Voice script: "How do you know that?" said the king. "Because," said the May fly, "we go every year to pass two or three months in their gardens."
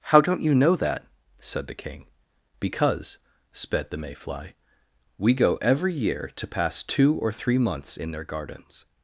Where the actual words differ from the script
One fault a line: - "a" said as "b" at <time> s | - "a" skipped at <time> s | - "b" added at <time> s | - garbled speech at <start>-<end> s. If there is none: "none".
- "do" said as "don't" at 0.2 s
- "said" said as "sped" at 3.5 s